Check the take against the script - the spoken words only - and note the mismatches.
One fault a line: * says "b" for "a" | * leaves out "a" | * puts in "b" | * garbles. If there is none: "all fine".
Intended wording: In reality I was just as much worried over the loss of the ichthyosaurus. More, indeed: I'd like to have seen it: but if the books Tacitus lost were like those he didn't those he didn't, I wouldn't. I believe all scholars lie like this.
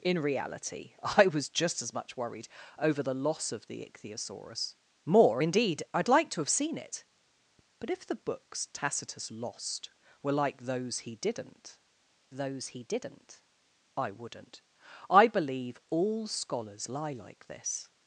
all fine